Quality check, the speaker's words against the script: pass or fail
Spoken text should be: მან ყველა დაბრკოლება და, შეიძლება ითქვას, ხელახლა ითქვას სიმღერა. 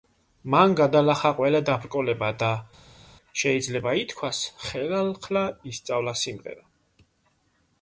fail